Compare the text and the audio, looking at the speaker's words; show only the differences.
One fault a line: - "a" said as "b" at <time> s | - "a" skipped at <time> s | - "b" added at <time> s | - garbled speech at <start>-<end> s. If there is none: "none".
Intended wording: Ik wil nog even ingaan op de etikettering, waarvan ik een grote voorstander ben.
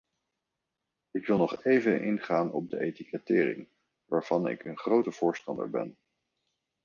none